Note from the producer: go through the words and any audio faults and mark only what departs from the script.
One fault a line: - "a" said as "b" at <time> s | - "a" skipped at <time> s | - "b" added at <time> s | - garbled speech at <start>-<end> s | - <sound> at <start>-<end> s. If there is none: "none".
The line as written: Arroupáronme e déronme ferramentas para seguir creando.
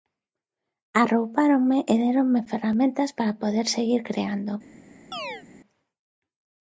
- "poder" added at 3.4 s
- chirp at 5.1-5.4 s